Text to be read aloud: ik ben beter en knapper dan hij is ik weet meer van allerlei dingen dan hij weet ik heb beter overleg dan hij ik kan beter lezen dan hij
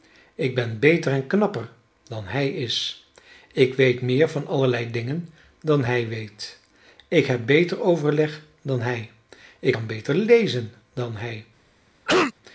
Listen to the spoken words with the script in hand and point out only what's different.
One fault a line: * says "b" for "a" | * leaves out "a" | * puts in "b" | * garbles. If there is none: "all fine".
all fine